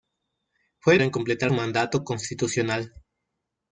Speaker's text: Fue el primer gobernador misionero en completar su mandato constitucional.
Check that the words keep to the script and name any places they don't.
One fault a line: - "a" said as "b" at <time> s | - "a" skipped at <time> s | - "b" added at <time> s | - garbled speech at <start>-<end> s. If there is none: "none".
- "primer gobernador misionero" skipped at 1.0 s
- "su" skipped at 1.5 s